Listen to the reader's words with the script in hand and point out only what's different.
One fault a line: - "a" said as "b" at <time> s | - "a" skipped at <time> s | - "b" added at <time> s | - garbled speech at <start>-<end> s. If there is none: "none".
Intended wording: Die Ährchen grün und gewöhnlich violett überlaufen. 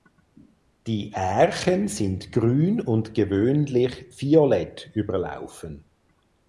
- "sind" added at 1.9 s